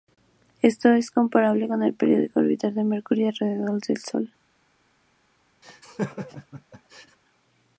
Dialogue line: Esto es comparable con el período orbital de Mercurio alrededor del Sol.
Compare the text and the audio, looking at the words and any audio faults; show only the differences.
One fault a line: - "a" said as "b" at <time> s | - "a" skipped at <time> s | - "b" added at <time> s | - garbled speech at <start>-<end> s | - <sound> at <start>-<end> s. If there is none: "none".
- laugh at 5.6-7.2 s